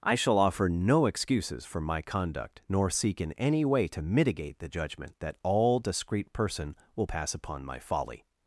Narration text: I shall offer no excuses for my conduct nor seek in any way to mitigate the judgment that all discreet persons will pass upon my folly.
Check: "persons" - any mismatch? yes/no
yes